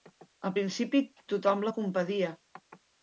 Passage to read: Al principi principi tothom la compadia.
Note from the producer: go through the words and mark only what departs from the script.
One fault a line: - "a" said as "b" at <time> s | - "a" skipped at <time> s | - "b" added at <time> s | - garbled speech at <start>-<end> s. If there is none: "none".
- "principi" skipped at 1.0 s